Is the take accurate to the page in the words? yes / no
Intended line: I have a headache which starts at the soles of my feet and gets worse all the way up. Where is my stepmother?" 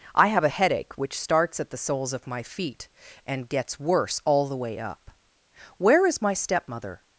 yes